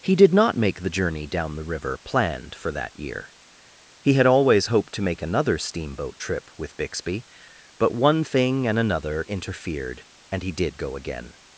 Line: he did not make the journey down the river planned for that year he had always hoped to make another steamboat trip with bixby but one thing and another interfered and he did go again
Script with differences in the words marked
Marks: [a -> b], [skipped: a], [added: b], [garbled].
he did not make the journey down the river planned for that year he had always hoped to make another steamboat trip with bixby but one thing and another interfered and he did go again